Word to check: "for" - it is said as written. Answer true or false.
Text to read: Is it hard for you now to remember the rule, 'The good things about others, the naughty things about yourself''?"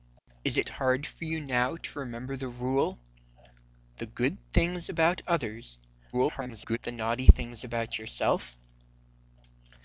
true